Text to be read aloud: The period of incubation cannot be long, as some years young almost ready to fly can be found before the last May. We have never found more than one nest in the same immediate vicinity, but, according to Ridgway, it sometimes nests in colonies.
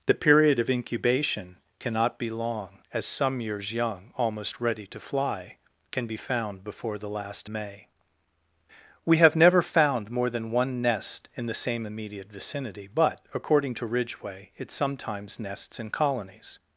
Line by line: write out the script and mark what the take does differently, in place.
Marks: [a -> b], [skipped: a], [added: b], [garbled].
The period of incubation cannot be long, as some years young almost ready to fly can be found before the last May. We have never found more than one nest in the same immediate vicinity, but, according to Ridgway, it sometimes nests in colonies.